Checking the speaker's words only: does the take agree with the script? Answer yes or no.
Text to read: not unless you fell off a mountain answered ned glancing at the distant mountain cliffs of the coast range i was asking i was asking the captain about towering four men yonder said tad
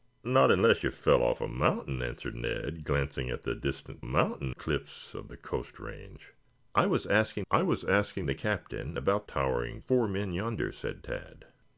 yes